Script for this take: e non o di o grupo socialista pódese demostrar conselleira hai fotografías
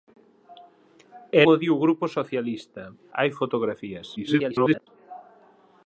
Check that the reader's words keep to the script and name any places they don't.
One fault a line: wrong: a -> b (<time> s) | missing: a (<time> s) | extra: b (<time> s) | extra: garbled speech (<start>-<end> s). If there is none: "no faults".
missing: non (1.4 s)
missing: pódese demostrar conselleira (2.8 s)
extra: garbled speech (4.2-4.9 s)